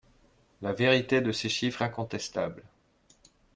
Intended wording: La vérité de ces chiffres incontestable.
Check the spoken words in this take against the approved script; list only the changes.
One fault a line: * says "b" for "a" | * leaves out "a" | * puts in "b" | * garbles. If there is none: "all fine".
all fine